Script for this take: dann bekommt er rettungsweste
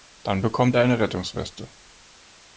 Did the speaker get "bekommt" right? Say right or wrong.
right